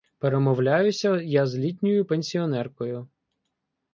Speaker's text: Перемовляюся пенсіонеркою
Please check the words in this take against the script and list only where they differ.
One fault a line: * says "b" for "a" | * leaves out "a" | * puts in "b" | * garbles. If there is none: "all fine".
* puts in "я з літньою"